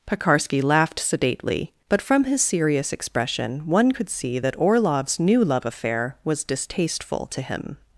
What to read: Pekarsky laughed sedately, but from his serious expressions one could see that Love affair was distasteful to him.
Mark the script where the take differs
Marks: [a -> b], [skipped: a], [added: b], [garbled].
Pekarsky laughed sedately, but from his serious [expressions -> expression] one could see that [added: Orlov's new] Love affair was distasteful to him.